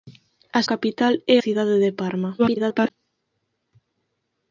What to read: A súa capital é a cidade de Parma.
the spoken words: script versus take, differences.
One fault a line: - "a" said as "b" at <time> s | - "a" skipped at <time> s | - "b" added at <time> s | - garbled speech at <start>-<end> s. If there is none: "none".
- "súa" skipped at 0.6 s
- "a" skipped at 1.4 s
- garbled speech at 2.4-2.9 s